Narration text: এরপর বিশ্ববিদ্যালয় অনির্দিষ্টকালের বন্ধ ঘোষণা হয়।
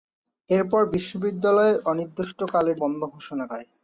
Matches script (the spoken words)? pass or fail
pass